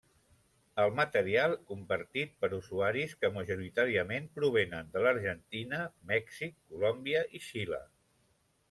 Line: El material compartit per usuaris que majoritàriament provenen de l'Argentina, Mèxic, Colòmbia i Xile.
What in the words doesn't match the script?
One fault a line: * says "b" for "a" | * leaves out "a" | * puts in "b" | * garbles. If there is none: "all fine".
all fine